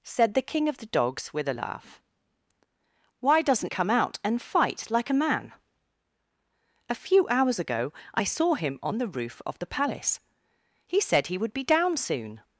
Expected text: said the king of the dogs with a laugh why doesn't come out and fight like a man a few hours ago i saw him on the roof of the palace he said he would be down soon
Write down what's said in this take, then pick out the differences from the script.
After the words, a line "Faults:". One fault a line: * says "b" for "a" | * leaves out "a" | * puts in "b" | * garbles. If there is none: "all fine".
said the king of the dogs with a laugh why doesn't come out and fight like a man a few hours ago i saw him on the roof of the palace he said he would be down soon
Faults:
all fine